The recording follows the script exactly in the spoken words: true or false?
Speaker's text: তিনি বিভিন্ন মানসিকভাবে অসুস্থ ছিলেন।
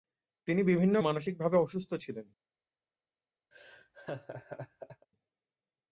true